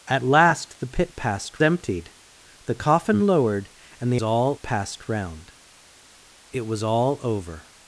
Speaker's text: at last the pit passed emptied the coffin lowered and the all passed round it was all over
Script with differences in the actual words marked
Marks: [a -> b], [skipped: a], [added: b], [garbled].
at last the pit passed emptied the coffin lowered and the all passed round it was all over